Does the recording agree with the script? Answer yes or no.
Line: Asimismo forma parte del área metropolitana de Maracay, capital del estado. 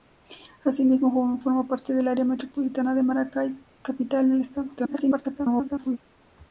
no